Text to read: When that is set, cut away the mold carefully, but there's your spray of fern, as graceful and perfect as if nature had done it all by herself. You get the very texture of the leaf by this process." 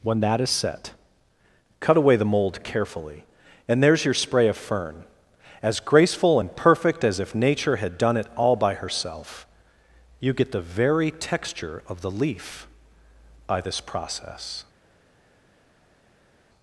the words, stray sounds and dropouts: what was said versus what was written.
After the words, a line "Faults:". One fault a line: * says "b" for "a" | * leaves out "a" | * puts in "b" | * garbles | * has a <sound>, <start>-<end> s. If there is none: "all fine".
When that is set, cut away the mold carefully, and there's your spray of fern, as graceful and perfect as if nature had done it all by herself. You get the very texture of the leaf by this process."
Faults:
* says "and" for "but"